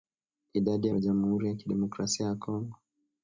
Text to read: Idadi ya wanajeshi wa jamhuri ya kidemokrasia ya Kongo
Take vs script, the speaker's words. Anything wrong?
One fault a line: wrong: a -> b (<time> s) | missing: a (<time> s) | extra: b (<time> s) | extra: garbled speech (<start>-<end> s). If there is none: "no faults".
missing: wanajeshi (0.9 s)